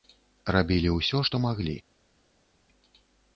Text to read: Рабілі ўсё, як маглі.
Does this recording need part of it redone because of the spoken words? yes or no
yes